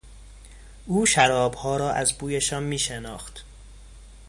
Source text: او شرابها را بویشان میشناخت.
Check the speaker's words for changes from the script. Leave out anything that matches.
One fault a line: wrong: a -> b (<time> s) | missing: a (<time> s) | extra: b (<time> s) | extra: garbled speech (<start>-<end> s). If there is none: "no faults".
extra: از (1.9 s)